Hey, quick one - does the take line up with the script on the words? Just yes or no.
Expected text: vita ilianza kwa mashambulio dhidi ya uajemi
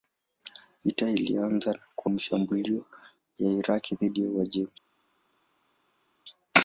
no